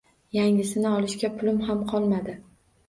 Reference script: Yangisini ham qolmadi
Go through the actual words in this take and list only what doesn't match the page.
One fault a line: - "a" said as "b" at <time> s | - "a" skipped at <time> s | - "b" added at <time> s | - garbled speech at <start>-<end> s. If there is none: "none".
- "olishga pulim" added at 0.9 s